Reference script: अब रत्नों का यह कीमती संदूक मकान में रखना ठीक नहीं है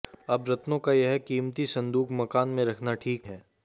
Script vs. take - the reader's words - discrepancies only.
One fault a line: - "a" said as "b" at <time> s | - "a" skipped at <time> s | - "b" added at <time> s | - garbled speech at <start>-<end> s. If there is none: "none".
- "नहीं" skipped at 3.3 s